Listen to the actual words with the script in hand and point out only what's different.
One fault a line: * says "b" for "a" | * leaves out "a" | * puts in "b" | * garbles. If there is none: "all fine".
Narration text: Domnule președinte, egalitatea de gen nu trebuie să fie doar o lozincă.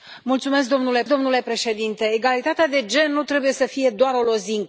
* puts in "domnule"